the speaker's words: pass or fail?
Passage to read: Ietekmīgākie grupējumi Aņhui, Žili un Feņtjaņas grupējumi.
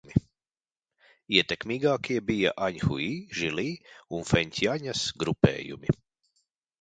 fail